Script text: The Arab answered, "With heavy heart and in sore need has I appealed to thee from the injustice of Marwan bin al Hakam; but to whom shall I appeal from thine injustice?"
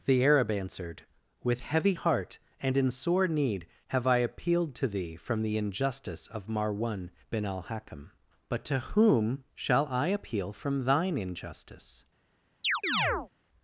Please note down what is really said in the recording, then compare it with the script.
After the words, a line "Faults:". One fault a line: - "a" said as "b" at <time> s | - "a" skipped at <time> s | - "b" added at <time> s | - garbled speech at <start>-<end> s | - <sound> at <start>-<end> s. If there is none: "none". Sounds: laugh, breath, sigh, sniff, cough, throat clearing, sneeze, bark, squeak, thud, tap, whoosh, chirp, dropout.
The Arab answered, "With heavy heart and in sore need have I appealed to thee from the injustice of Marwan bin al Hakam; but to whom shall I appeal from thine injustice?"
Faults:
- "has" said as "have" at 3.9 s
- chirp at 12.6-13.3 s